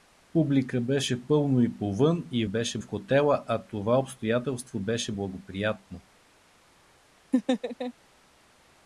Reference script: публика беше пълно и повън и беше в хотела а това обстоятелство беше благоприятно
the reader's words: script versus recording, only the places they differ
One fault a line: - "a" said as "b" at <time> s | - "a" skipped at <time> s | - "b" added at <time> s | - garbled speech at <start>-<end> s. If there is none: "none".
none